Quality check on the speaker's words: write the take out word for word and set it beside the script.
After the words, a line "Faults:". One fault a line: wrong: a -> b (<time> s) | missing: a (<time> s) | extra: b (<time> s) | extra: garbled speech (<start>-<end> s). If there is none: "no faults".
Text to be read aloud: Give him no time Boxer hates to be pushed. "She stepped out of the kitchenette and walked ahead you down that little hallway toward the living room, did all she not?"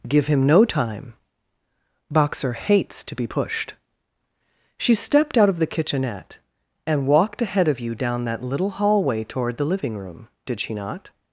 Give him no time Boxer hates to be pushed. "She stepped out of the kitchenette and walked ahead of you down that little hallway toward the living room, did she not?"
Faults:
extra: of (7.7 s)
missing: all (10.6 s)